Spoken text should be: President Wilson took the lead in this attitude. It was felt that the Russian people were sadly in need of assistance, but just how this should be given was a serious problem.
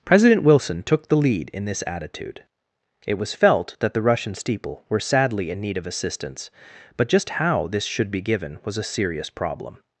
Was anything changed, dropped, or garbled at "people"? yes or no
yes